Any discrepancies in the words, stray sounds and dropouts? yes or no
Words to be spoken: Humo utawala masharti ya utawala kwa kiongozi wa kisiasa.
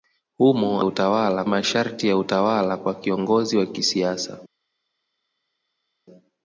no